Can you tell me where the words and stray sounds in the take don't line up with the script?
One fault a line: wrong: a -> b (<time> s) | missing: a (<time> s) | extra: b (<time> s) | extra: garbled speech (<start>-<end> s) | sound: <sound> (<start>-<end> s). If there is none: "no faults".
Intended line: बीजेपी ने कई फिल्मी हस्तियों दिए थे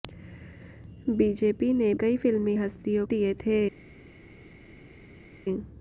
no faults